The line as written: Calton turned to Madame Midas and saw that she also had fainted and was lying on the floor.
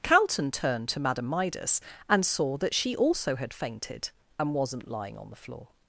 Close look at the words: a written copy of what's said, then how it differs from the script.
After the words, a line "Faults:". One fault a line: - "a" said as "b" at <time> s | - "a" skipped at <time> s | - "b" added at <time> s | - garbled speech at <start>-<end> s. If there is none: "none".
Calton turned to Madame Midas and saw that she also had fainted and wasn't lying on the floor.
Faults:
- "was" said as "wasn't" at 4.5 s